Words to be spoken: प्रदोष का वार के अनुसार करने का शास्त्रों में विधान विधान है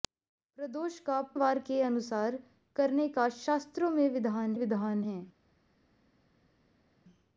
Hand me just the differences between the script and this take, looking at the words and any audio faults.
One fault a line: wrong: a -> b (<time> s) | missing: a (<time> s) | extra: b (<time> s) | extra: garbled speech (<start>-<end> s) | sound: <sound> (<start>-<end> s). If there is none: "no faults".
no faults